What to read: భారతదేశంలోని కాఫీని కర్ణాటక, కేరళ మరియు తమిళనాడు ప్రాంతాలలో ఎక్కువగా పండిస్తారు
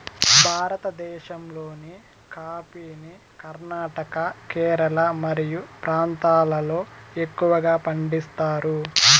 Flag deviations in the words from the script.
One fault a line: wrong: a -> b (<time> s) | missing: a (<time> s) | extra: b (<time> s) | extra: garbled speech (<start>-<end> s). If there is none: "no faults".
missing: తమిళనాడు (5.6 s)